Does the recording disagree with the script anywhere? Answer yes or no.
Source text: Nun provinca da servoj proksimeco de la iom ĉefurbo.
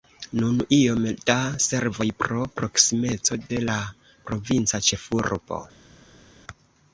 yes